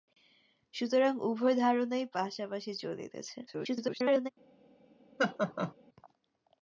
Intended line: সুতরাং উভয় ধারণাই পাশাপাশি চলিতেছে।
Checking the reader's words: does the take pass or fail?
fail